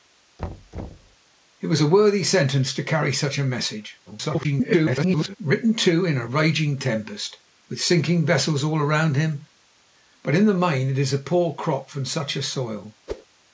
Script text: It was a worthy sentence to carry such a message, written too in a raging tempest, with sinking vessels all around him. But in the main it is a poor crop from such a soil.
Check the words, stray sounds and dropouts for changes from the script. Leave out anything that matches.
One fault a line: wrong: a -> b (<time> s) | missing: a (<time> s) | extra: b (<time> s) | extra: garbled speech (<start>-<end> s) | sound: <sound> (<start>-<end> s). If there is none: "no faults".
sound: thud (0.4-1.2 s)
extra: garbled speech (4.1-5.4 s)
sound: whoosh (13.1-13.3 s)